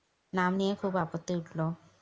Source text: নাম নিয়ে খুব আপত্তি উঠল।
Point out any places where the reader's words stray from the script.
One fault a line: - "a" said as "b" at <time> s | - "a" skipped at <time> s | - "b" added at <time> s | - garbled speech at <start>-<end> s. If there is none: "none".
none